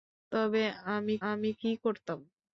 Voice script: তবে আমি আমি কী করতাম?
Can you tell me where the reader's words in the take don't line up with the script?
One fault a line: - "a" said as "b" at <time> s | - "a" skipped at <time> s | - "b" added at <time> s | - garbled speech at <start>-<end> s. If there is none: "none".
none